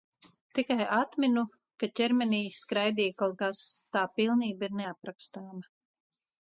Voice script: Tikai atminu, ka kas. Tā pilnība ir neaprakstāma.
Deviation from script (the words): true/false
true